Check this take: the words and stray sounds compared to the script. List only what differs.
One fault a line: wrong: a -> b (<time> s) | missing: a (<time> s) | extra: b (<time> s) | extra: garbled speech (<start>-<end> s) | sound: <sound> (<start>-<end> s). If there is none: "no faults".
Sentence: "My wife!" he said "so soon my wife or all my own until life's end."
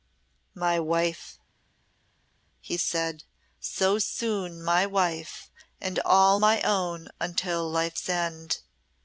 wrong: or -> and (5.8 s)